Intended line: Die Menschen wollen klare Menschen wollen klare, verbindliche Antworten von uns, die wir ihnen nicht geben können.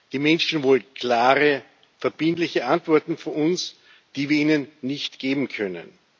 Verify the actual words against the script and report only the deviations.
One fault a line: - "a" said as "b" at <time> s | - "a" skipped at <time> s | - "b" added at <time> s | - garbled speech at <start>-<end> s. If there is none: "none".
- "Menschen wollen klare" skipped at 1.6 s